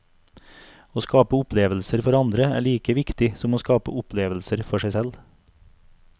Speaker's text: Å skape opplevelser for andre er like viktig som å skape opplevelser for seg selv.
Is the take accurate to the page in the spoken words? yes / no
yes